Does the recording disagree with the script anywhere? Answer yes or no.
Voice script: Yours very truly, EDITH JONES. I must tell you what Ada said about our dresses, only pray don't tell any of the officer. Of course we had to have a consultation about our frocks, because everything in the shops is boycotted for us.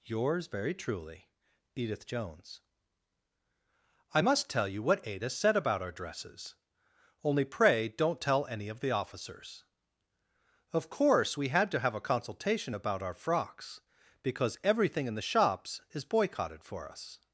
yes